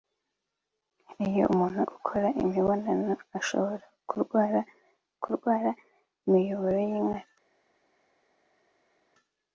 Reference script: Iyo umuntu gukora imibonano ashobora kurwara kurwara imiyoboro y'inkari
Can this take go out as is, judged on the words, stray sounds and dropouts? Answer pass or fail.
pass